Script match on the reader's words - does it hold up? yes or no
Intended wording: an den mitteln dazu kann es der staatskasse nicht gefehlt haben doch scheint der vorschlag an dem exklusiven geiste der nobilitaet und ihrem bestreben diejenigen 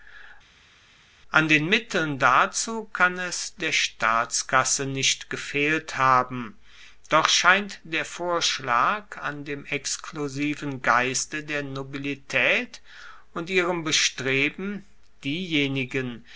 yes